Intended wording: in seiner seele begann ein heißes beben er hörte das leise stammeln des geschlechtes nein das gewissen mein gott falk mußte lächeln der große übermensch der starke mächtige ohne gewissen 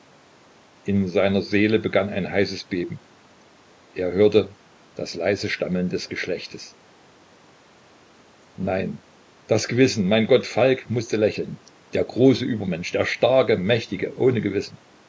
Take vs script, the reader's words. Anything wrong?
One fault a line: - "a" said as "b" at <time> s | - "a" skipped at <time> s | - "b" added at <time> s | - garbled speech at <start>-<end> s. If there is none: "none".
none